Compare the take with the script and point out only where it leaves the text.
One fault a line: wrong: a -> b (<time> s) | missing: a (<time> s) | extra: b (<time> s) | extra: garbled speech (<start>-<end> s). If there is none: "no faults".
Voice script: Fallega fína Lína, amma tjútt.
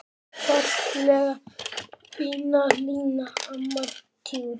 no faults